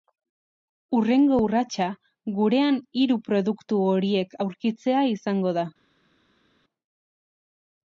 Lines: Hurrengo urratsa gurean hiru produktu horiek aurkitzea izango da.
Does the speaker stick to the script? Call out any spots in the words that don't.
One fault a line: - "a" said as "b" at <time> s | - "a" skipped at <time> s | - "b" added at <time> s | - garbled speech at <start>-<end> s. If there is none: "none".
none